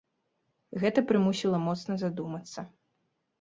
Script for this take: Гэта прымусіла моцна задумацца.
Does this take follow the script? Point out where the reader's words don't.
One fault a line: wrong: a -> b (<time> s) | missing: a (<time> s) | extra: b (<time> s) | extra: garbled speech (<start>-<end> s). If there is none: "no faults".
no faults